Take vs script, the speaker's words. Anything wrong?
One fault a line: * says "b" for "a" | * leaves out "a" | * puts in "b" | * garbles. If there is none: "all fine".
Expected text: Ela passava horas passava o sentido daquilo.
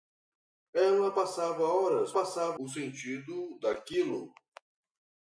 all fine